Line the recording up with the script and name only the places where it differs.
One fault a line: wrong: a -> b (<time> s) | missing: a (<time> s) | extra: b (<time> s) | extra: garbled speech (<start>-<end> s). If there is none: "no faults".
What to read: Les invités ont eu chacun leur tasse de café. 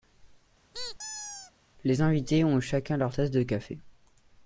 no faults